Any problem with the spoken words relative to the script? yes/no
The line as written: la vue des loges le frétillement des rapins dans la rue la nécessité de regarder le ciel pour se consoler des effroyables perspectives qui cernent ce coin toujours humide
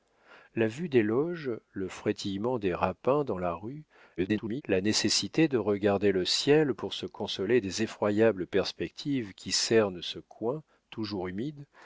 yes